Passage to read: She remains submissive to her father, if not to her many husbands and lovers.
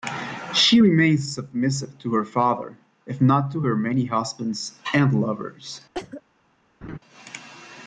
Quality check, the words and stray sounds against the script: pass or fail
fail